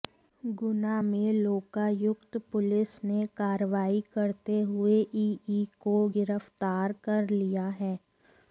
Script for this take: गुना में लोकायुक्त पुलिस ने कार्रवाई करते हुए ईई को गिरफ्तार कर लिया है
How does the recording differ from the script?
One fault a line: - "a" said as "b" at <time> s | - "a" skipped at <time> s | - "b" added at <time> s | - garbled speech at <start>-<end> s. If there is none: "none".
none